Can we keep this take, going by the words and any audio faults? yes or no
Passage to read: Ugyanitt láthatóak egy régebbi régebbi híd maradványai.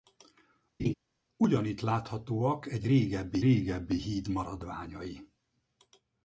no